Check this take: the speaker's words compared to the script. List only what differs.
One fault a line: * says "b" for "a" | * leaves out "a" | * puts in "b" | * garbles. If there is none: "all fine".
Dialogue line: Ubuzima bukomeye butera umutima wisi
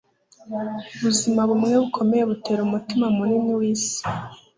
* puts in "bumwe"
* puts in "munini"